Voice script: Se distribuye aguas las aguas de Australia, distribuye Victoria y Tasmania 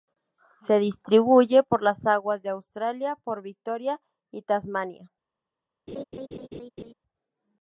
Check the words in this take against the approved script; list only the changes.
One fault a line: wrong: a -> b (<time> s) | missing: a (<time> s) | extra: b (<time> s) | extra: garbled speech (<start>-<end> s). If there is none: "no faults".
wrong: aguas -> por (1.6 s)
wrong: distribuye -> por (3.2 s)